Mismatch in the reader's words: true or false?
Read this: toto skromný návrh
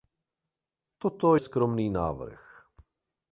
false